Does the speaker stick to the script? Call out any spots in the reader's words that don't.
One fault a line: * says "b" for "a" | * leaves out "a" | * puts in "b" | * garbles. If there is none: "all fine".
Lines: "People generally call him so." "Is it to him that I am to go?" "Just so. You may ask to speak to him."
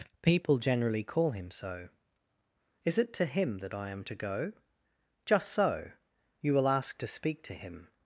* says "will" for "may"